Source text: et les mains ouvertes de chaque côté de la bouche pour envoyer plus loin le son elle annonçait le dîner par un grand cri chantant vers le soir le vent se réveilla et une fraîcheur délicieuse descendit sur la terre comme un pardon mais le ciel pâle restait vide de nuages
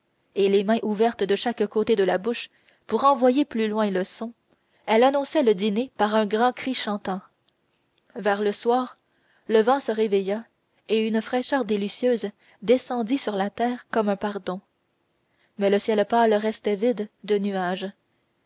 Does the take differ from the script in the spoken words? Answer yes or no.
no